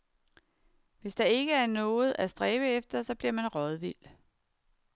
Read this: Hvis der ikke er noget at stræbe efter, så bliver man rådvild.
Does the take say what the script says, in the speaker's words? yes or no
yes